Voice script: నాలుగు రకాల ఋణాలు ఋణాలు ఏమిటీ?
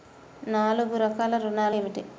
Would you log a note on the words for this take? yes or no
yes